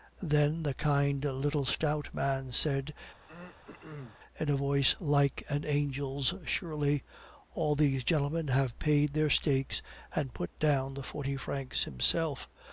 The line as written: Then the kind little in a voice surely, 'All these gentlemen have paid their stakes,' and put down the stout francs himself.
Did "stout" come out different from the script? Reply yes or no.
yes